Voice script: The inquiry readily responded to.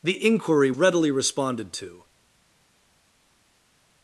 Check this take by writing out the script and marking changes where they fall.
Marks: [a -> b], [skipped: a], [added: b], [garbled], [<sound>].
The inquiry readily responded to.